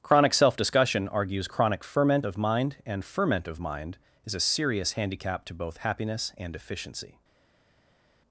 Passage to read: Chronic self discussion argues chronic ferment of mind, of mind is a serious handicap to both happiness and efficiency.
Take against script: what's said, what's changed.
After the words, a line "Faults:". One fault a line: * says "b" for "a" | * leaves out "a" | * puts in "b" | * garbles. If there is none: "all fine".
Chronic self discussion argues chronic ferment of mind, and ferment of mind is a serious handicap to both happiness and efficiency.
Faults:
* puts in "and ferment"